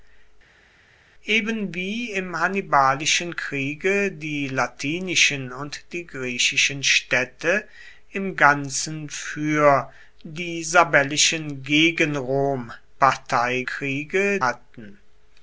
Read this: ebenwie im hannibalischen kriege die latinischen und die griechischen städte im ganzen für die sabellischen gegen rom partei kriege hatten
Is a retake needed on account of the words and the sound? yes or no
no